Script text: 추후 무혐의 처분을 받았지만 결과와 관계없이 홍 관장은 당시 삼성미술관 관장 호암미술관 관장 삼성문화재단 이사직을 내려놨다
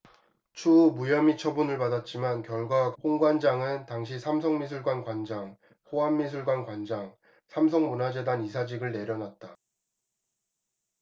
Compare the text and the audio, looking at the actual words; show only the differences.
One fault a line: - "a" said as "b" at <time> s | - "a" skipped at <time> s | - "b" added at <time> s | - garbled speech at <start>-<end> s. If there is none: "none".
- "관계없이" skipped at 2.9 s